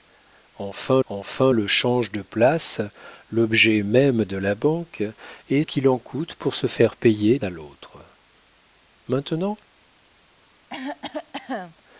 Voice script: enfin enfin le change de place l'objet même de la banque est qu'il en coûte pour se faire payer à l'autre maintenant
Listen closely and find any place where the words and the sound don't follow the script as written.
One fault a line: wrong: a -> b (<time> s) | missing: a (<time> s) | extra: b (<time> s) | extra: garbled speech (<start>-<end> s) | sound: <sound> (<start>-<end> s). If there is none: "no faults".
sound: cough (10.7-11.8 s)